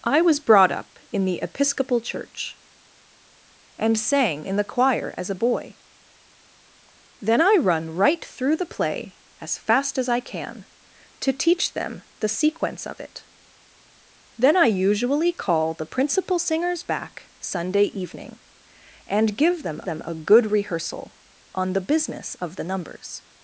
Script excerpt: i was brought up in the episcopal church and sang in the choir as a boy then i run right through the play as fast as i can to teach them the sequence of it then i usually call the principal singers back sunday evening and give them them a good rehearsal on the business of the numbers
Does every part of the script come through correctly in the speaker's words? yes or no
yes